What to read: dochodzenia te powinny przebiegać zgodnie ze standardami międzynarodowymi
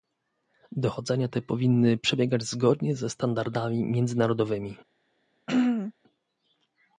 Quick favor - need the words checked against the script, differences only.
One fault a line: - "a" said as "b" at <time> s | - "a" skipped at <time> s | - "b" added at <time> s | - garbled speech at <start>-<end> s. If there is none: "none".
none